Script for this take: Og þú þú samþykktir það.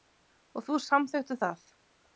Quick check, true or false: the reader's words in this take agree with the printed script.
false